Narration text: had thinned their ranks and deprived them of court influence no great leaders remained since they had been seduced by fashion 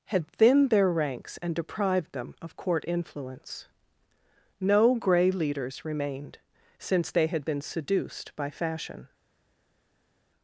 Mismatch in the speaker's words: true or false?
true